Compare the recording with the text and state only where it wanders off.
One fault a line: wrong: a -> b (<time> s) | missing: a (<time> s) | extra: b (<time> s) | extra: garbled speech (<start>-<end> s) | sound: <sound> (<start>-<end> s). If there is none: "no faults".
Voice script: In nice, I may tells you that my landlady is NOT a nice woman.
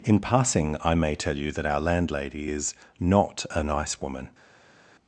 wrong: nice -> passing (0.2 s)
wrong: tells -> tell (1.1 s)
wrong: my -> our (1.6 s)